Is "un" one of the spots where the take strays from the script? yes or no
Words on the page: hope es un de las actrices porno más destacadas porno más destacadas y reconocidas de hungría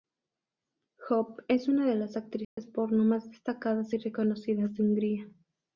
yes